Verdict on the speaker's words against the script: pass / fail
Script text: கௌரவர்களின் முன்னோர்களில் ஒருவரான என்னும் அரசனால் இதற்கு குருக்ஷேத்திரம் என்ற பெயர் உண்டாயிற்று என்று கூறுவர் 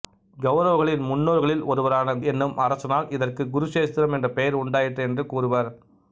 pass